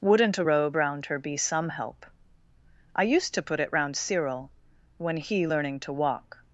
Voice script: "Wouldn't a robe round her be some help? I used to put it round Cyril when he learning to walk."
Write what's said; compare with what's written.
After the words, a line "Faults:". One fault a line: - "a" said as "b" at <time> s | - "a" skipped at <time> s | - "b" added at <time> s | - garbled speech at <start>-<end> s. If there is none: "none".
"Wouldn't a robe round her be some help? I used to put it round Cyril when he learning to walk."
Faults:
none